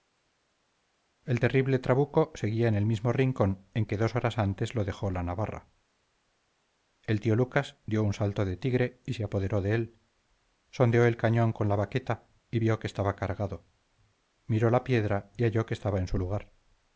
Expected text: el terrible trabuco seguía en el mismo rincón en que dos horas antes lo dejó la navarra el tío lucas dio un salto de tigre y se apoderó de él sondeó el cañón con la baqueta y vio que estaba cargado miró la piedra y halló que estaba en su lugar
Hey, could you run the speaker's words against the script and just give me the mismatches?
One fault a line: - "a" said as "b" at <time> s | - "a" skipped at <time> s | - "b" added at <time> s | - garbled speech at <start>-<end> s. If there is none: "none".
none